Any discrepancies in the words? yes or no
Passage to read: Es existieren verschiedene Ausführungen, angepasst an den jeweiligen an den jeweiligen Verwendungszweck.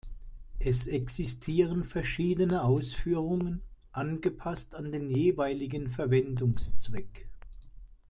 yes